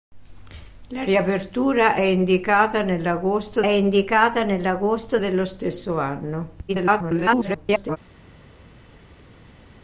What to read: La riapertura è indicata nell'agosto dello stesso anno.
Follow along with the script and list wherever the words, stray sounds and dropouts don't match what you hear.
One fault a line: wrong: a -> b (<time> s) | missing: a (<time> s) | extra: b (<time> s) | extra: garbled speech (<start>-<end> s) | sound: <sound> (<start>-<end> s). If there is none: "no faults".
extra: indicata nell'agosto (3.7 s)
extra: garbled speech (6.7-8.0 s)